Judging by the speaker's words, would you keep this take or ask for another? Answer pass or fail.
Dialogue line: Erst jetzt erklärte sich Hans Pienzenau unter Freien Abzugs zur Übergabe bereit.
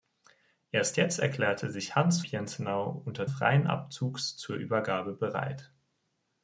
pass